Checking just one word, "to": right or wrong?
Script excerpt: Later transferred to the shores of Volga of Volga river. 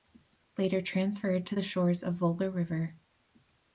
right